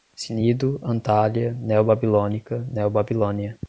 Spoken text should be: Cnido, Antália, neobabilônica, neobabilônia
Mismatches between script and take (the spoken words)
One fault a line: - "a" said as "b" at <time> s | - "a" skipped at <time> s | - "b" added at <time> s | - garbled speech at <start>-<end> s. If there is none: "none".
none